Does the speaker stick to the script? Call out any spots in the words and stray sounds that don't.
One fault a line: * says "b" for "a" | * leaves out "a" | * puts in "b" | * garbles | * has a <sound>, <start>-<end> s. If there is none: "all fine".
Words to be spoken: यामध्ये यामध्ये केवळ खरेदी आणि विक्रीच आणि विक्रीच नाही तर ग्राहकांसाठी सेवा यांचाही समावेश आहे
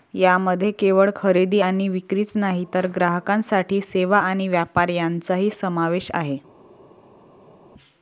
* leaves out "यामध्ये"
* leaves out "आणि विक्रीच"
* puts in "आणि व्यापार"